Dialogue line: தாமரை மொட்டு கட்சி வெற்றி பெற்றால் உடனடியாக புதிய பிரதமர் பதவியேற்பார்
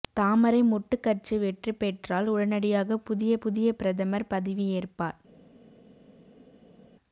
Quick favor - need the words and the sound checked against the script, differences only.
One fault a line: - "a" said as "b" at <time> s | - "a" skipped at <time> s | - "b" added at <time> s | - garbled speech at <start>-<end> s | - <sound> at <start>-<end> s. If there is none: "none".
- "புதிய" added at 3.4 s